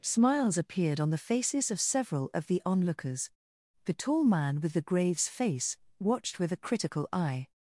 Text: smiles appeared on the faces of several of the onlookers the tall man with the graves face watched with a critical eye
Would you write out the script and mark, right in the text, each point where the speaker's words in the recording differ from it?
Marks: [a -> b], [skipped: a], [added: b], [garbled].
smiles appeared on the faces of several of the onlookers the tall man with the graves face watched with a critical eye